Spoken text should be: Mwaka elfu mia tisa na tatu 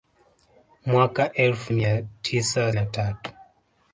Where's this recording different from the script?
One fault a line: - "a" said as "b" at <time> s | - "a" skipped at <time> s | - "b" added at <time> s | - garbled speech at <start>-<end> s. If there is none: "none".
none